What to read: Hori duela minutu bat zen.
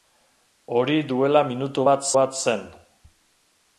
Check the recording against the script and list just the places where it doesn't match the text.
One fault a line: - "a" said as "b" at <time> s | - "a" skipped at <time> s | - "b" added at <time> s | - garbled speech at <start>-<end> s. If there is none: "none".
- "bat" added at 2.2 s